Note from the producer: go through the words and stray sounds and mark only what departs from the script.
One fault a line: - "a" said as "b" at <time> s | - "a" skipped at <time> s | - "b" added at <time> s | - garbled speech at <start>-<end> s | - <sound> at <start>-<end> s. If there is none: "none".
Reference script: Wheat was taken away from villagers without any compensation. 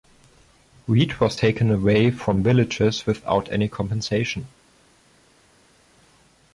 none